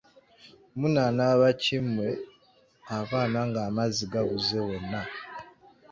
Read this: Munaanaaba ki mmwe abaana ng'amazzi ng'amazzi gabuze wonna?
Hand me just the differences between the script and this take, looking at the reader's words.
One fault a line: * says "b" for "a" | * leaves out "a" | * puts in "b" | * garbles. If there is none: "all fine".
* leaves out "ng'amazzi"